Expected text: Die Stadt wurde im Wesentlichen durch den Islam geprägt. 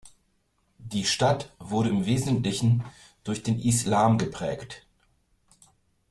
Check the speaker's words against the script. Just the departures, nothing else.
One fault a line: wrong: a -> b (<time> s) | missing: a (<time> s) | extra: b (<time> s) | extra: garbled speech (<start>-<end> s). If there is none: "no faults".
no faults